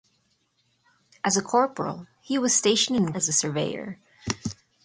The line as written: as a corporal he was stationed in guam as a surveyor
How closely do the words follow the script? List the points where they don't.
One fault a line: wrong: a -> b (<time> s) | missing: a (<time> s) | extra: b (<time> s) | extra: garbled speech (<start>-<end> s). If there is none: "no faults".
missing: guam (3.1 s)